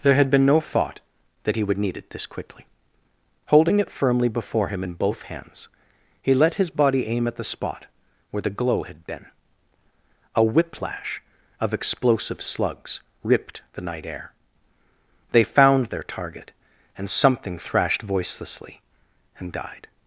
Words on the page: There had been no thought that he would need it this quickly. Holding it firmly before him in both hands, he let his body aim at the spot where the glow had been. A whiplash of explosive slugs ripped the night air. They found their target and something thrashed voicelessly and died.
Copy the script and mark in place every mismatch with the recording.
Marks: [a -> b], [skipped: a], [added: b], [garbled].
There had been no thought that he would need it this quickly. Holding it firmly before him in both hands, he let his body aim at the spot where the glow had been. A whiplash of explosive slugs ripped the night air. They found their target and something thrashed voicelessly and died.